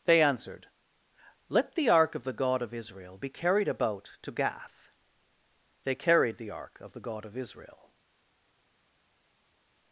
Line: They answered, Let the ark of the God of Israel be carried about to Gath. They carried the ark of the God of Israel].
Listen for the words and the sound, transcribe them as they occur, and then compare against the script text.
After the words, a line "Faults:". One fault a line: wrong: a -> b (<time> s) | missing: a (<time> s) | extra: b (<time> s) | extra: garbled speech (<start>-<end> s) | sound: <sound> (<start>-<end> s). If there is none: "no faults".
They answered, Let the ark of the God of Israel be carried about to Gath. They carried the ark of the God of Israel].
Faults:
no faults